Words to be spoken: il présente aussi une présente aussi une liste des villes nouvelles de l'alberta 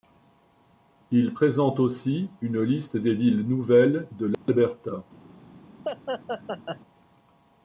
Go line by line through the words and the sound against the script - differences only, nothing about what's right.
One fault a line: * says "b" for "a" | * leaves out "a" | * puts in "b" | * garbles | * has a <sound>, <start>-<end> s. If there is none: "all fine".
* leaves out "présente aussi une"
* has a dropout, 4.3-4.5 s
* has a laugh, 5.8-6.8 s